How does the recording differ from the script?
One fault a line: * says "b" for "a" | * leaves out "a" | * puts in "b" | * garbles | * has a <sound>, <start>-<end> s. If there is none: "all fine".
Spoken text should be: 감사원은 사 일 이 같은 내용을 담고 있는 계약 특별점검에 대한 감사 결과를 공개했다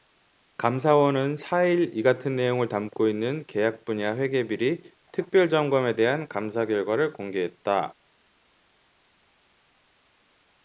* puts in "분야 회계비리"